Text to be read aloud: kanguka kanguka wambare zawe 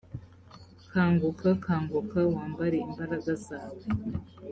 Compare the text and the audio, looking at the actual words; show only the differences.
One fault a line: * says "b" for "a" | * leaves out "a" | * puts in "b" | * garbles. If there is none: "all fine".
* puts in "imbaraga"